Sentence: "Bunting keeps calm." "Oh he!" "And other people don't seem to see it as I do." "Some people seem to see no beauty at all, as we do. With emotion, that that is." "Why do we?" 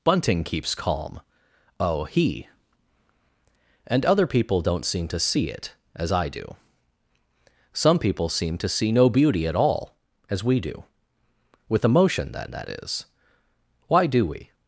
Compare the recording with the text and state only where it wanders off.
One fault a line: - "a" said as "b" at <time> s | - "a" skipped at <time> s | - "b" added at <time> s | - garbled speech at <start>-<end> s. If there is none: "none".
none